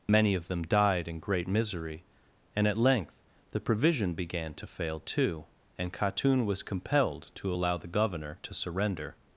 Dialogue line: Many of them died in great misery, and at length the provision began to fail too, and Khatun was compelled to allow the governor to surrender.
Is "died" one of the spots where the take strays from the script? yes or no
no